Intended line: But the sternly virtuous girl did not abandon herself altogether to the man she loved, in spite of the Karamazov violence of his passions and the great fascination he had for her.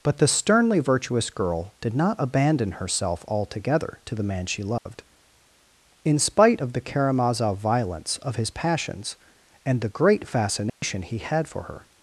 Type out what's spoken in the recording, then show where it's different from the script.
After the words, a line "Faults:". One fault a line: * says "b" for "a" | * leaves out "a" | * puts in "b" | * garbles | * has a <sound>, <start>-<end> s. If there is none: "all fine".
But the sternly virtuous girl did not abandon herself altogether to the man she loved, in spite of the Karamazov violence of his passions and the great fascination he had for her.
Faults:
* has a dropout, 4.8-4.9 s
* has a dropout, 10.7-10.8 s